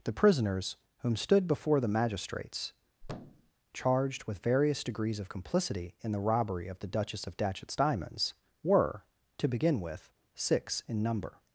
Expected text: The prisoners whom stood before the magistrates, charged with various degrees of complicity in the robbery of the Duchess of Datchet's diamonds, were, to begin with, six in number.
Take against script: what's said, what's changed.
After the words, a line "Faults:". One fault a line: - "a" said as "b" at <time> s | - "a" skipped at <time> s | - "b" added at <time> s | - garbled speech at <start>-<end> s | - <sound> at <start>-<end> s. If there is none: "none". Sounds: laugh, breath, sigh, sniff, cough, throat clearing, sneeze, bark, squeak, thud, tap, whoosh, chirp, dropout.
The prisoners whom stood before the magistrates, charged with various degrees of complicity in the robbery of the Duchess of Datchet's diamonds, were, to begin with, six in number.
Faults:
- thud at 3.0-3.5 s